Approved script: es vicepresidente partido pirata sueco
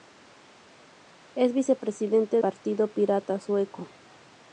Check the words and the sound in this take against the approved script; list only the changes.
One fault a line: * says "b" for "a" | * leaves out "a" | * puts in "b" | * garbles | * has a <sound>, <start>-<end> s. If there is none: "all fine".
all fine